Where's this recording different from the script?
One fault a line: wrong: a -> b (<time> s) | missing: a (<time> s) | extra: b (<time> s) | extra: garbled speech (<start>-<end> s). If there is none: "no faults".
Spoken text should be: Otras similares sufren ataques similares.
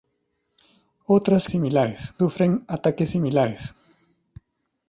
no faults